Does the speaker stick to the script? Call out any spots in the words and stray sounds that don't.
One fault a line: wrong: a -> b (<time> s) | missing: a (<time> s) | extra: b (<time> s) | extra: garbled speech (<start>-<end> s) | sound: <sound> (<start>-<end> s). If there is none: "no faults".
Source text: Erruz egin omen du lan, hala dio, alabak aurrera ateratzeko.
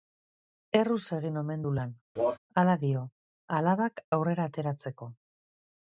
sound: cough (2.2-2.4 s)